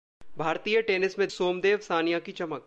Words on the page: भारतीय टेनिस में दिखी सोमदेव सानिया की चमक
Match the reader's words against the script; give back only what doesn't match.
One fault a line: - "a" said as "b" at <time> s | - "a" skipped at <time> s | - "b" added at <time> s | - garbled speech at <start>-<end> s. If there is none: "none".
- "दिखी" skipped at 1.3 s